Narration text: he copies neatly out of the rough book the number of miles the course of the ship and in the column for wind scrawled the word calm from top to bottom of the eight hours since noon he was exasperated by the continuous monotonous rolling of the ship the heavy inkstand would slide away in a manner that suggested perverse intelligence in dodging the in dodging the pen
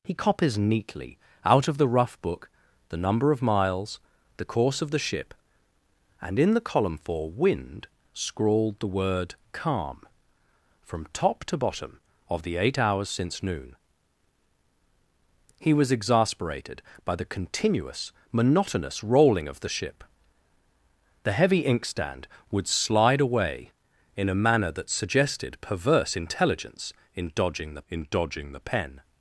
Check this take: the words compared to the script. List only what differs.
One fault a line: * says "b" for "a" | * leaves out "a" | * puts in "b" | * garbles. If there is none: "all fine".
all fine